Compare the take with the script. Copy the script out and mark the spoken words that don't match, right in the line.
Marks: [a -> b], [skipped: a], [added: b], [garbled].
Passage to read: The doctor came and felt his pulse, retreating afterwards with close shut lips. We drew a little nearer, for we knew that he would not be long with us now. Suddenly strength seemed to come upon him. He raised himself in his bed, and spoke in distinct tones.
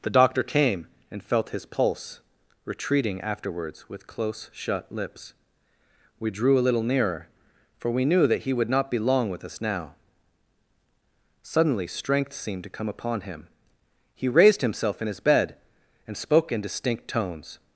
The doctor came and felt his pulse, retreating afterwards with close shut lips. We drew a little nearer, for we knew that he would not be long with us now. Suddenly strength seemed to come upon him. He raised himself in his bed, and spoke in distinct tones.